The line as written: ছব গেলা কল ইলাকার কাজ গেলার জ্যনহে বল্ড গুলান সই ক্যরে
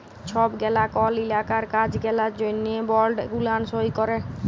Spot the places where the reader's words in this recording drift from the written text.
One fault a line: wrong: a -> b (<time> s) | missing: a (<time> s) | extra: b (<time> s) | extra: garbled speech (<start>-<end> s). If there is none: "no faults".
no faults